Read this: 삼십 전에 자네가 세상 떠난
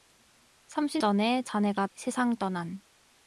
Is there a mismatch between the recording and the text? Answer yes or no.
no